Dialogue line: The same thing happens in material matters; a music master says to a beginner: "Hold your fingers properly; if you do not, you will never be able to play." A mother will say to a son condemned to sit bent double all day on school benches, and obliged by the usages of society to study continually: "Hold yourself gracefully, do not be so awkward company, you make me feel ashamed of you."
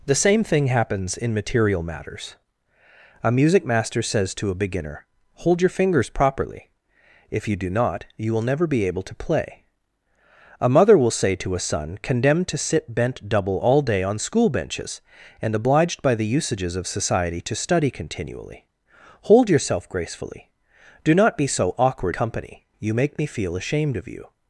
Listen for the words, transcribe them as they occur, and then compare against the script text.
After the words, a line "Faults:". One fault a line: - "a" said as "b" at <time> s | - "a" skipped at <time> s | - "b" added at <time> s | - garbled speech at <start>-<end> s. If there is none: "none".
The same thing happens in material matters; a music master says to a beginner: "Hold your fingers properly; if you do not, you will never be able to play." A mother will say to a son condemned to sit bent double all day on school benches, and obliged by the usages of society to study continually: "Hold yourself gracefully, do not be so awkward company, you make me feel ashamed of you."
Faults:
none